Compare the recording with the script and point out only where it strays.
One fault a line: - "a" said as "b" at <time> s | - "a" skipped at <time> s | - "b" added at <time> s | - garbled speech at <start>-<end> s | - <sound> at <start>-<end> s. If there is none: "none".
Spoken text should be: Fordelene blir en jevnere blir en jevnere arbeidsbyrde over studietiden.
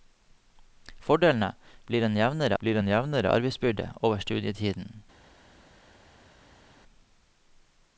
none